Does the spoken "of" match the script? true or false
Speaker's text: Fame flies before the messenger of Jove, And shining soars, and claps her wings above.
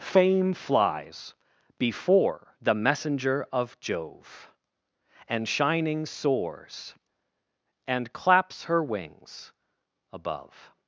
true